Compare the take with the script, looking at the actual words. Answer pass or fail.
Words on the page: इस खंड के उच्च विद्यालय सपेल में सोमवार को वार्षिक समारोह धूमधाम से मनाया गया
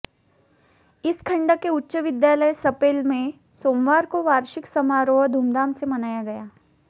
pass